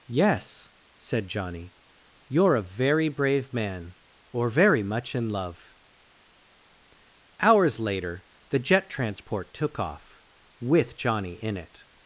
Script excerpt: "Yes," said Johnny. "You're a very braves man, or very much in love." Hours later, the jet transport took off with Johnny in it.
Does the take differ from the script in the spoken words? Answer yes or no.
yes